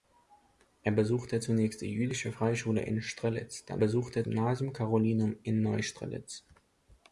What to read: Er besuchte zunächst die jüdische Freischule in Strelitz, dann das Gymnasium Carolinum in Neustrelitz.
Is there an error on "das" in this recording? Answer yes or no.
yes